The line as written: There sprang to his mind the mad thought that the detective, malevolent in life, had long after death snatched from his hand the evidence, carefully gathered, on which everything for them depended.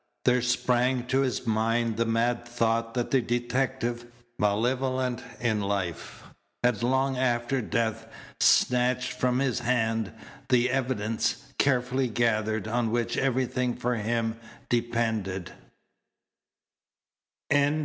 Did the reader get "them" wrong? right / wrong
wrong